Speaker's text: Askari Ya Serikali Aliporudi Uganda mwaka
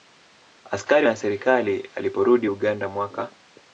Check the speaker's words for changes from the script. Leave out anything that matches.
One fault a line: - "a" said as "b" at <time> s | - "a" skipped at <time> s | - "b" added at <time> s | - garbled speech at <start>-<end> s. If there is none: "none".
none